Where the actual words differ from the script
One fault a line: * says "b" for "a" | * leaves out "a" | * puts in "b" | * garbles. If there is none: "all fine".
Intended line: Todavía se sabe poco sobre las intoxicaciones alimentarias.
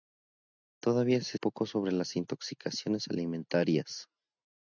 * leaves out "sabe"